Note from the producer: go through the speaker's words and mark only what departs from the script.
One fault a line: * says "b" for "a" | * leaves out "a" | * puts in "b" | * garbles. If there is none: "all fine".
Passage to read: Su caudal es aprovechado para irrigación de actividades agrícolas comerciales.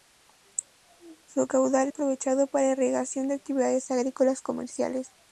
* leaves out "es"